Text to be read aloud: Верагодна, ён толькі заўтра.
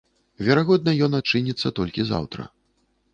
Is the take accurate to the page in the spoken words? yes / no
no